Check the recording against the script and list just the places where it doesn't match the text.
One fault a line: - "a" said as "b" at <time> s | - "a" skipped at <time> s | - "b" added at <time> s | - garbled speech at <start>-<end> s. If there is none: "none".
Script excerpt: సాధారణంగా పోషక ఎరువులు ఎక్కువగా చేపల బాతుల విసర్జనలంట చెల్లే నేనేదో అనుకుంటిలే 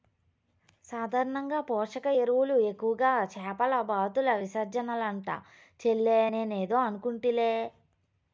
none